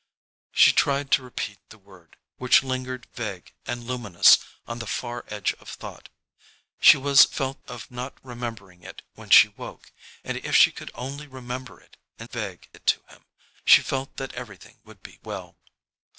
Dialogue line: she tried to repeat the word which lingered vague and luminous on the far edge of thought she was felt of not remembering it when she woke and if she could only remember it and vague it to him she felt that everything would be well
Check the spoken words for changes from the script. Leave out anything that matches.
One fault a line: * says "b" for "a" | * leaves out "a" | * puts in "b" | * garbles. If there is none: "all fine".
all fine